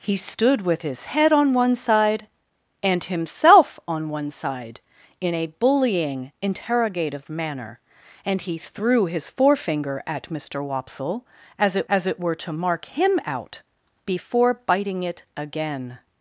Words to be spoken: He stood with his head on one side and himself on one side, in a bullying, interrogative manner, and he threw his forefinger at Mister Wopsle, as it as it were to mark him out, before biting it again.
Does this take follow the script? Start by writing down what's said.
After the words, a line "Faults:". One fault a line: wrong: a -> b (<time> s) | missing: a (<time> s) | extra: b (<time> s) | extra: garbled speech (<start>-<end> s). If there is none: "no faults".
He stood with his head on one side and himself on one side, in a bullying, interrogative manner, and he threw his forefinger at Mister Wopsle, as it as it were to mark him out, before biting it again.
Faults:
no faults